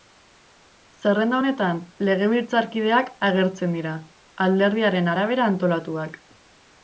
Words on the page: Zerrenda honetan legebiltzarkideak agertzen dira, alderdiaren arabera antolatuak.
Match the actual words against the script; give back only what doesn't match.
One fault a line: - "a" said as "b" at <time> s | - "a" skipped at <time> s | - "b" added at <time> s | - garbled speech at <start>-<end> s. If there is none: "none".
none